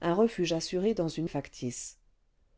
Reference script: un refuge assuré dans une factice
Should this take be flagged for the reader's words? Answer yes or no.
no